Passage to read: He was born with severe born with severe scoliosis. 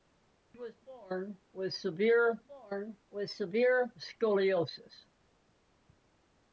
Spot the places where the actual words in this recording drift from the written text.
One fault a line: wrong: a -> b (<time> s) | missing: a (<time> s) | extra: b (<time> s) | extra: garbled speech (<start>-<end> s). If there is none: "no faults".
no faults